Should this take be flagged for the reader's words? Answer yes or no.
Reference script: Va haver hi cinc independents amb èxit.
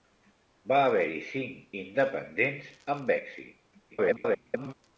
yes